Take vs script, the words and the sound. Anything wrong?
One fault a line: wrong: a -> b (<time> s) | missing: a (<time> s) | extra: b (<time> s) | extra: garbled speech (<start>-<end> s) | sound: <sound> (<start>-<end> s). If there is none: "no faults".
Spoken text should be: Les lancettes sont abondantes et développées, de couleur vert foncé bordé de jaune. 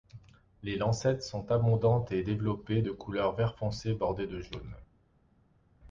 no faults